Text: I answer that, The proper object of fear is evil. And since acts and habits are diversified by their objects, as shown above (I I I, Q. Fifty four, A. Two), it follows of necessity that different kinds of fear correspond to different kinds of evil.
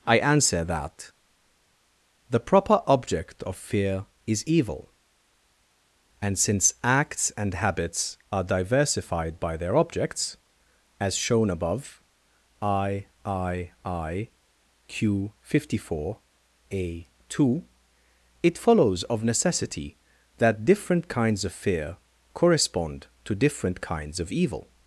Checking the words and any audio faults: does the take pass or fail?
pass